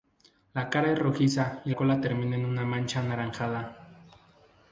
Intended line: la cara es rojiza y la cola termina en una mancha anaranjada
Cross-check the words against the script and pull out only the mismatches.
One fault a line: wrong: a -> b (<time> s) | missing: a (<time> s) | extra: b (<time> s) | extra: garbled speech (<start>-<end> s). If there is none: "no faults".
missing: la (1.7 s)